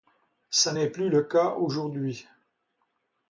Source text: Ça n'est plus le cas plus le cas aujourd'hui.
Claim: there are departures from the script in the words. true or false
true